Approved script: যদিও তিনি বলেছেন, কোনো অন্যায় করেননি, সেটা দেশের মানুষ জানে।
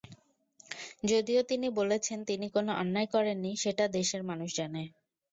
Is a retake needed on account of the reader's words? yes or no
yes